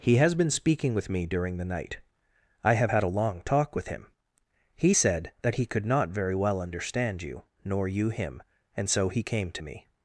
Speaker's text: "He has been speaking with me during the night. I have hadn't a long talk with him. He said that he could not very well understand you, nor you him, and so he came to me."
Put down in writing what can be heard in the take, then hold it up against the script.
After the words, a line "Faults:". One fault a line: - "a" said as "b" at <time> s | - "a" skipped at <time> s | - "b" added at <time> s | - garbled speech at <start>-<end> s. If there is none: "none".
"He has been speaking with me during the night. I have had a long talk with him. He said that he could not very well understand you, nor you him, and so he came to me."
Faults:
- "hadn't" said as "had" at 2.9 s